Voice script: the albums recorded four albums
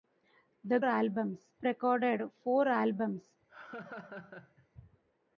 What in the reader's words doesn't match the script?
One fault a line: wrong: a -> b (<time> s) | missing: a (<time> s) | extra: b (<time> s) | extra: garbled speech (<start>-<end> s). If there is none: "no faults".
no faults